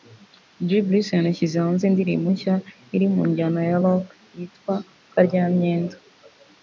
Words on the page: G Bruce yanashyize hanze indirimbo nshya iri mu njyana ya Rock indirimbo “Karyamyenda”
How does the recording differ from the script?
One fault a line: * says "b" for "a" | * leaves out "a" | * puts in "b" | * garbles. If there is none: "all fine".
* says "yitwa" for "indirimbo"